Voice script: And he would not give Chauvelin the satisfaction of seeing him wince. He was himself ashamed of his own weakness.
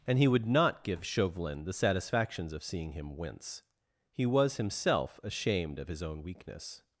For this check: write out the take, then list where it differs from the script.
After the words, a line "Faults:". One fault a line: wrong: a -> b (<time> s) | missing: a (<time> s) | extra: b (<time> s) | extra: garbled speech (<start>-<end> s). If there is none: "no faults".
And he would not give Chauvelin the satisfactions of seeing him wince. He was himself ashamed of his own weakness.
Faults:
wrong: satisfaction -> satisfactions (1.7 s)